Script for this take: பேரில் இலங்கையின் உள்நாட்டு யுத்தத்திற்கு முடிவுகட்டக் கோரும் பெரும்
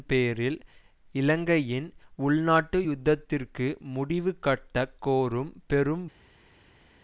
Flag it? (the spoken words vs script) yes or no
no